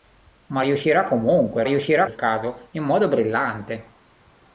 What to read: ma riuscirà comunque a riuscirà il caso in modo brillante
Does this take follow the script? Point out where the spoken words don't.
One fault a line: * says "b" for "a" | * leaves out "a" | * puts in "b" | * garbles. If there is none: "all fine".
all fine